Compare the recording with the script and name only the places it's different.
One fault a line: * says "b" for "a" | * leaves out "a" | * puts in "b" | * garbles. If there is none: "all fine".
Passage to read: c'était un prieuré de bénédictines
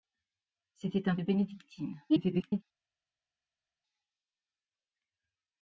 * leaves out "prieuré"
* garbles